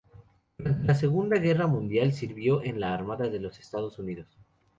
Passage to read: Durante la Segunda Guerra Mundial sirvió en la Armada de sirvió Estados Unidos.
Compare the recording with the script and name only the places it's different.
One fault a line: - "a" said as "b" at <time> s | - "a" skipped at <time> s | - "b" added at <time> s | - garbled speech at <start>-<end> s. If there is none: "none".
- "sirvió" said as "los" at 3.4 s